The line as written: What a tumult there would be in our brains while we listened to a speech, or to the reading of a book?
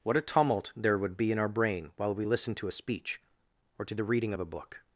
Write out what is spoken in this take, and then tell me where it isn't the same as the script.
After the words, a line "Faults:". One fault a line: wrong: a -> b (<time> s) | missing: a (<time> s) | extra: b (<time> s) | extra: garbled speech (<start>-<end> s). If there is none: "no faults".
What a tumult there would be in our brain while we listened to a speech, or to the reading of a book?
Faults:
wrong: brains -> brain (1.5 s)